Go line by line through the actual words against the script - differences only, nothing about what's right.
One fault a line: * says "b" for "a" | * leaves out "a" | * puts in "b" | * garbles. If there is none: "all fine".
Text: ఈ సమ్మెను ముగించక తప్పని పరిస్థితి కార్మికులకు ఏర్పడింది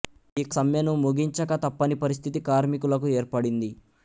all fine